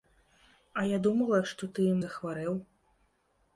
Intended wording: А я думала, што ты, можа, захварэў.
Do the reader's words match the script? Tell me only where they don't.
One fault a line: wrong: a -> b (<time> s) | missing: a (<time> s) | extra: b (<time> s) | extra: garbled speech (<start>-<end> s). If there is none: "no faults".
missing: можа (1.9 s)